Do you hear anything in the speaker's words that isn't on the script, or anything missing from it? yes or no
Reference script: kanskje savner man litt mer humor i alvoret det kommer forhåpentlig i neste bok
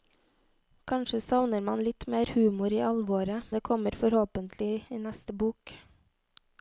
no